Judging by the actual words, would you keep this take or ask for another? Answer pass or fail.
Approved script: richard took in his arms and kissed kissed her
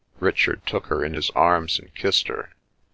fail